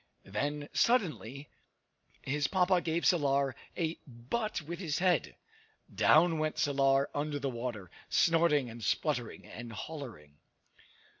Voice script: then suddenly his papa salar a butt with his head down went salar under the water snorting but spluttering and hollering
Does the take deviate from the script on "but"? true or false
true